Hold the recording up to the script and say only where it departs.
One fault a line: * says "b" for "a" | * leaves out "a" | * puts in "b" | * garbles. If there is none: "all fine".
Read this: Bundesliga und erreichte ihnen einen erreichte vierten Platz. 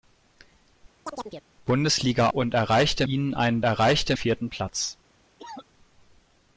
all fine